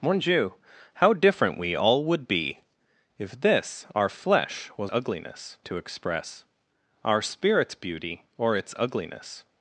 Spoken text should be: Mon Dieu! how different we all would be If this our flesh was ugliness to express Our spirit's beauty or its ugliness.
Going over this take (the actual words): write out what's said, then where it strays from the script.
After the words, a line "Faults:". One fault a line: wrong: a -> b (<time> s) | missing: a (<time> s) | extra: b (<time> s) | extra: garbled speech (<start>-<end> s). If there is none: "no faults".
Mon Dieu! how different we all would be If this our flesh was ugliness to express Our spirit's beauty or its ugliness.
Faults:
no faults